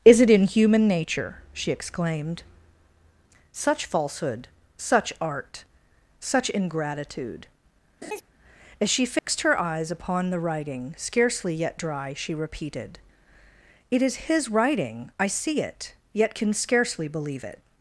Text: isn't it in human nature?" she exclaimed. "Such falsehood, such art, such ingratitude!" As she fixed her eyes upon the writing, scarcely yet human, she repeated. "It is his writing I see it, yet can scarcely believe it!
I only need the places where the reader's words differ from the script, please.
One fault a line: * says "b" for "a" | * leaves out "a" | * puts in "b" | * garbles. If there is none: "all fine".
* says "is" for "isn't"
* says "dry" for "human"